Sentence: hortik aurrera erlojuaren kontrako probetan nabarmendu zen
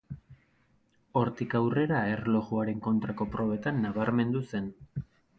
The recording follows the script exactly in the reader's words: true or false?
true